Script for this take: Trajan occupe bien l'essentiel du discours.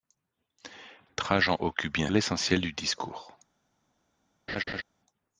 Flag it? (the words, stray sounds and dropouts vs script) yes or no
yes